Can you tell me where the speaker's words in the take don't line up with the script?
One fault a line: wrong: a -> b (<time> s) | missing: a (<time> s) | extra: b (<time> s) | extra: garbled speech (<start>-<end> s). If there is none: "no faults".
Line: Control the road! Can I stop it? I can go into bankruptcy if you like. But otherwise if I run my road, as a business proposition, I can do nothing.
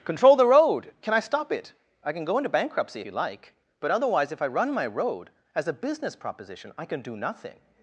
missing: if (3.0 s)